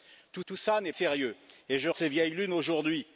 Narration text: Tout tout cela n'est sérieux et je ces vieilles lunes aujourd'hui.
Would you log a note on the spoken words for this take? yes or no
no